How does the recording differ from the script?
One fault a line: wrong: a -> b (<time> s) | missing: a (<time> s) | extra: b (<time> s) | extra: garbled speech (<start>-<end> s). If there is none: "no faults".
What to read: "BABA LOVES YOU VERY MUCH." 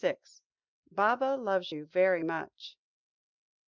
no faults